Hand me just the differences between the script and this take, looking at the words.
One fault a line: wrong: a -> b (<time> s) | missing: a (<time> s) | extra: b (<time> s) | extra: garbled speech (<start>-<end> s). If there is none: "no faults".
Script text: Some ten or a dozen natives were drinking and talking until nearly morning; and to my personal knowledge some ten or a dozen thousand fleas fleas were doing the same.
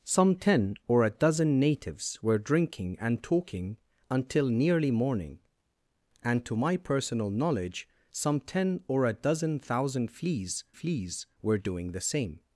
no faults